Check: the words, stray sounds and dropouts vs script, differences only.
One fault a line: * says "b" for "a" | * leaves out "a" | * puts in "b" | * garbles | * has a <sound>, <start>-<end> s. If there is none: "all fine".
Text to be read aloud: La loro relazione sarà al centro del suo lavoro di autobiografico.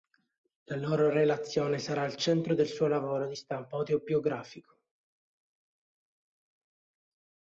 * puts in "stampo"